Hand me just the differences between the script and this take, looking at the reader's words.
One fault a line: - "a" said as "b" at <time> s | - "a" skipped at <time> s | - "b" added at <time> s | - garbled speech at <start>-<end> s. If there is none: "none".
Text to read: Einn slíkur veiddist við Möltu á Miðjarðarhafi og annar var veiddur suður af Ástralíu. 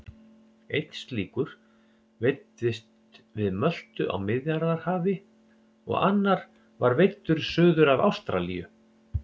none